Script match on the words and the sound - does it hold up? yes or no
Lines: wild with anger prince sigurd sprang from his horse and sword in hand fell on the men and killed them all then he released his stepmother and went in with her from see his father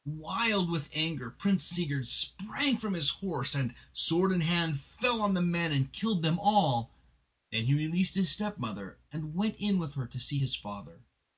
no